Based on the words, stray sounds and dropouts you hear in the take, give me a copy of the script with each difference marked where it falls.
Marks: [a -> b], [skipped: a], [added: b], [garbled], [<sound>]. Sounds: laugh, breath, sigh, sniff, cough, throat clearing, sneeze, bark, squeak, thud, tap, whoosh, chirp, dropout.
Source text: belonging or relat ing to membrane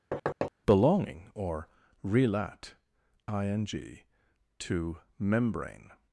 [thud] belonging or relat ing to membrane